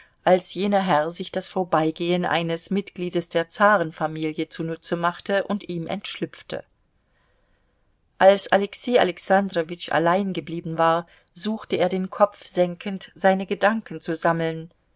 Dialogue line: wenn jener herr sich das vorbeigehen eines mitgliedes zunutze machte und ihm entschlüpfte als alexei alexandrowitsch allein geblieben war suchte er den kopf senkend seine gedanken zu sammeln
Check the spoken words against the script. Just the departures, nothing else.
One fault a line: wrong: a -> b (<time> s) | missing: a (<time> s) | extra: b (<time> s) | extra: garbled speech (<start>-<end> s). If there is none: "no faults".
wrong: wenn -> als (0.2 s)
extra: der zarenfamilie (3.3 s)